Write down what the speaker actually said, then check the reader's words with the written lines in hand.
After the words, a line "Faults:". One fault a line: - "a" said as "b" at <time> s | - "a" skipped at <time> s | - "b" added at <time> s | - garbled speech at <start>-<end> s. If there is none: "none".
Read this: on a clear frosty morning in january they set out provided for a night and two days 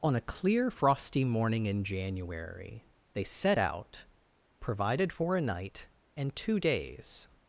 on a clear frosty morning in january they set out provided for a night and two days
Faults:
none